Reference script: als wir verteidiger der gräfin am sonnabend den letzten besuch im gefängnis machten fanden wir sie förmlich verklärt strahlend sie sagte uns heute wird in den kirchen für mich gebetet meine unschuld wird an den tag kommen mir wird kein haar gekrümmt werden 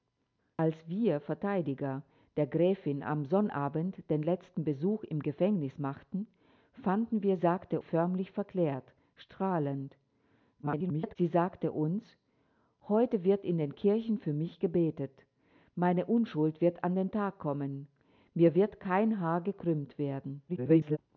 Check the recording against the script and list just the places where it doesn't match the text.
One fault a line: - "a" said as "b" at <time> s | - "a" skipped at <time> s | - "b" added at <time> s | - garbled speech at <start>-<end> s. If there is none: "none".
- "sie" said as "sagte" at 7.4 s
- garbled speech at 10.6-11.2 s
- garbled speech at 20.5-21.0 s